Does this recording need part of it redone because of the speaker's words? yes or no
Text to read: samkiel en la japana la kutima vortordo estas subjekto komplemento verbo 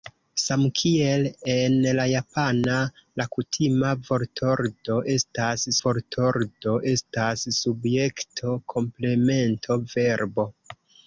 yes